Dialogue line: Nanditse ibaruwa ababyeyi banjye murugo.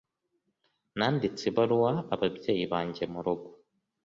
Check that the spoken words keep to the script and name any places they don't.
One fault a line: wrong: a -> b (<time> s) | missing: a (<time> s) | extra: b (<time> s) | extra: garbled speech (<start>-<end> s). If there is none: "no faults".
no faults